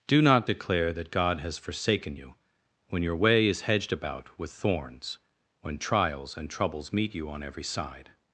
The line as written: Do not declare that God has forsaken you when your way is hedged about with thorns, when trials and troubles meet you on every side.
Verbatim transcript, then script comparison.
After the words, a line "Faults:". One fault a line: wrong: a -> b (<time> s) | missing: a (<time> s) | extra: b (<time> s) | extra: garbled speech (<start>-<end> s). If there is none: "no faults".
Do not declare that God has forsaken you when your way is hedged about with thorns, when trials and troubles meet you on every side.
Faults:
no faults